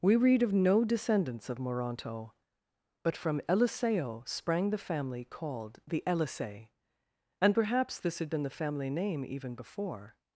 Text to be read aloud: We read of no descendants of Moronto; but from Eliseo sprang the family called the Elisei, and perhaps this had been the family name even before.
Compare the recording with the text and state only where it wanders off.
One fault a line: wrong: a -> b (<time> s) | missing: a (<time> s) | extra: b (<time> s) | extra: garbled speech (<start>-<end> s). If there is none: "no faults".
no faults